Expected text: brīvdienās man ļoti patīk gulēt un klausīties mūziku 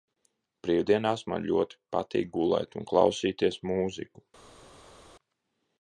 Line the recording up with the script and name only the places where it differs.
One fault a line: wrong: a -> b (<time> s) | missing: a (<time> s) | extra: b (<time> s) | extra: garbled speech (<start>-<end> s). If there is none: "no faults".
no faults